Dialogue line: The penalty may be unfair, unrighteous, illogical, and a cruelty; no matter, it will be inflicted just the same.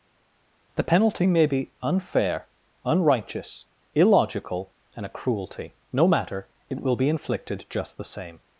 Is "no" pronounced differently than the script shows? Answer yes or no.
no